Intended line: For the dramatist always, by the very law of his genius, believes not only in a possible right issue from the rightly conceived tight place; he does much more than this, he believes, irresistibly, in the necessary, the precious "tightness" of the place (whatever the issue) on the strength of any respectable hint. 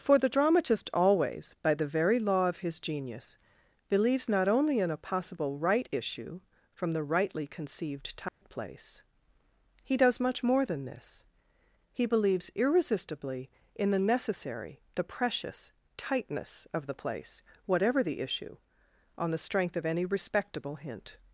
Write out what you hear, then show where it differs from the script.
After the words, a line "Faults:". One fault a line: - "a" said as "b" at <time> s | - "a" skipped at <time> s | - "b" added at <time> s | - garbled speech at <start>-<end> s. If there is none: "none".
For the dramatist always, by the very law of his genius, believes not only in a possible right issue from the rightly conceived tight place; he does much more than this, he believes, irresistibly, in the necessary, the precious "tightness" of the place (whatever the issue) on the strength of any respectable hint.
Faults:
none